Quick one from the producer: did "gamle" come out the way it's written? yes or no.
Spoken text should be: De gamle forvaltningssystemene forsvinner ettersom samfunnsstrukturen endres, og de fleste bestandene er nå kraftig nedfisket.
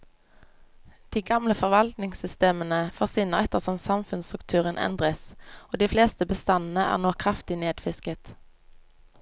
yes